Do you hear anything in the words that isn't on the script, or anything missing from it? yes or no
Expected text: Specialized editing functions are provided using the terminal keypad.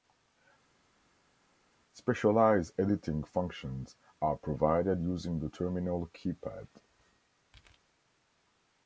no